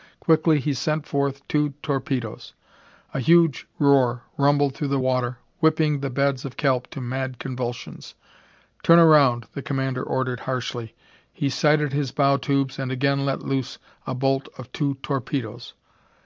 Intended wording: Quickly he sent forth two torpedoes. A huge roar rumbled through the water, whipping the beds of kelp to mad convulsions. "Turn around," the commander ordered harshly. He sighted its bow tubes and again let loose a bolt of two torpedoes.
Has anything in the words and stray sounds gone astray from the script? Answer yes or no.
yes